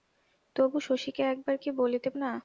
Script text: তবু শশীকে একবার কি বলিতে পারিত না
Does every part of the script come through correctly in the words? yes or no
no